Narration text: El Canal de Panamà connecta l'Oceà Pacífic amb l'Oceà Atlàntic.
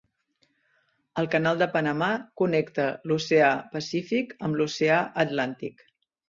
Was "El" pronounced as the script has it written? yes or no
yes